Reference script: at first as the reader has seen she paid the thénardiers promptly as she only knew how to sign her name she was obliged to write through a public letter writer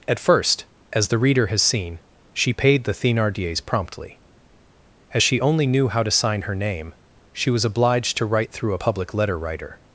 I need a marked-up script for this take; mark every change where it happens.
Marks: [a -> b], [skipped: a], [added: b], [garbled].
at first as the reader has seen she paid the thénardiers promptly as she only knew how to sign her name she was obliged to write through a public letter writer